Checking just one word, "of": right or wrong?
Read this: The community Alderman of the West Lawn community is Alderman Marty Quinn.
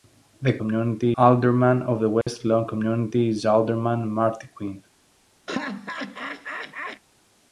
right